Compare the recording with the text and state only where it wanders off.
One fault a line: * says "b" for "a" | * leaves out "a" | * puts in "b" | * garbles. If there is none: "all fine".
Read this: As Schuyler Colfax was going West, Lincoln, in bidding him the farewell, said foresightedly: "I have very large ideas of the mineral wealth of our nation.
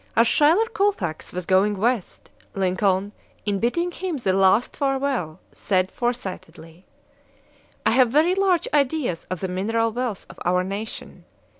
* puts in "last"